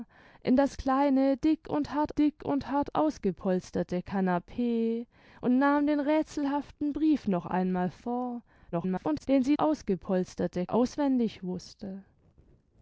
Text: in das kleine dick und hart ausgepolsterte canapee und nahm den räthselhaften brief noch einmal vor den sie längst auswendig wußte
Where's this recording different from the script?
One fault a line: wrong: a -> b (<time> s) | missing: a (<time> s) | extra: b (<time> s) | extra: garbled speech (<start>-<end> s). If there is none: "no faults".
extra: dick und hart (2.1 s)
extra: garbled speech (8.7-9.3 s)
wrong: längst -> ausgepolsterte (9.6 s)